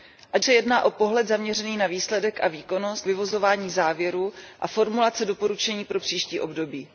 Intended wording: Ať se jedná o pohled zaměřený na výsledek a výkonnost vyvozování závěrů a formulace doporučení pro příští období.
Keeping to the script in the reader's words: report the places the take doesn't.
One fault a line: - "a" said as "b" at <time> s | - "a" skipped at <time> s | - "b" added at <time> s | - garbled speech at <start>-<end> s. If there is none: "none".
none